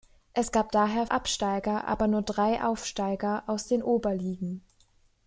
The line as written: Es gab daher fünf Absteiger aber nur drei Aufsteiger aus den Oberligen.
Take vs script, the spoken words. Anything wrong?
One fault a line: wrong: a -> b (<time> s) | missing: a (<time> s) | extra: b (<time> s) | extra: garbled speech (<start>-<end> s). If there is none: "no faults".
missing: fünf (1.1 s)